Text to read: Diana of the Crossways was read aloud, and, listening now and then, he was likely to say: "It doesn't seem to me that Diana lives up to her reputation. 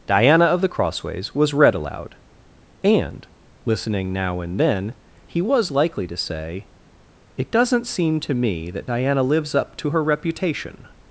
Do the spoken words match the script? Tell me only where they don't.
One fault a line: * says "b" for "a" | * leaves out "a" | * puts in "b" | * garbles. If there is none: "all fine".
all fine